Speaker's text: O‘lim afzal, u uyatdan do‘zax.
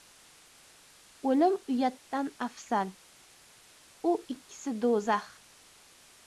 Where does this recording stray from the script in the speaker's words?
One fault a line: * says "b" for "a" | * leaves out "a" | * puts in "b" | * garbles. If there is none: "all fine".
* puts in "uyatdan"
* says "ikkisi" for "uyatdan"